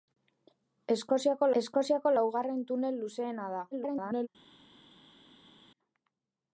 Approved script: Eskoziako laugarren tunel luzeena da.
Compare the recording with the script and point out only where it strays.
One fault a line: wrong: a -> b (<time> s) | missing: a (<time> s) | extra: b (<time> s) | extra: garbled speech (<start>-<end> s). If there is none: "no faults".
extra: eskoziako (1.6 s)
extra: garbled speech (3.7-4.3 s)